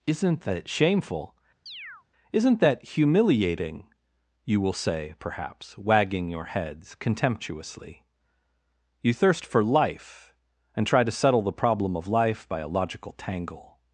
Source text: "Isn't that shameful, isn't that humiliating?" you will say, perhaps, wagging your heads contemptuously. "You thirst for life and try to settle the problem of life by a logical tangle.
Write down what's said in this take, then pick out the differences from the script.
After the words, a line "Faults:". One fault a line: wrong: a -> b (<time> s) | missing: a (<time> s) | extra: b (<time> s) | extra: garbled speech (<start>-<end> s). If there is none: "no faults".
"Isn't that shameful, isn't that humiliating?" you will say, perhaps, wagging your heads contemptuously. "You thirst for life and try to settle the problem of life by a logical tangle.
Faults:
no faults